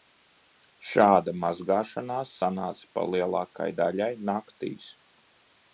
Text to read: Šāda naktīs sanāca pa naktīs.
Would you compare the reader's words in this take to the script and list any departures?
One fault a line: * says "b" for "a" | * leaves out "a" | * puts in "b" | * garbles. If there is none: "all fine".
* says "mazgāšanās" for "naktīs"
* puts in "lielākai daļai"